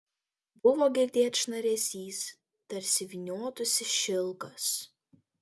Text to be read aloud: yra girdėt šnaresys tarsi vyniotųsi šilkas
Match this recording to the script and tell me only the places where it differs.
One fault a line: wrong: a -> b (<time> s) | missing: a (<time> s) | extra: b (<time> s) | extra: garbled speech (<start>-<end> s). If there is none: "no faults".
wrong: yra -> buvo (0.7 s)